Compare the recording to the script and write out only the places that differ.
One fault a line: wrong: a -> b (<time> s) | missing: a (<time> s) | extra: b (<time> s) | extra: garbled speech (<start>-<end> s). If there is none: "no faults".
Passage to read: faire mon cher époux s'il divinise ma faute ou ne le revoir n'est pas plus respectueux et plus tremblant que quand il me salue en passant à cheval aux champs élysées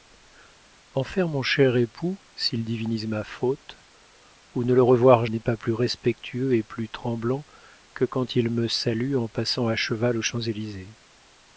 no faults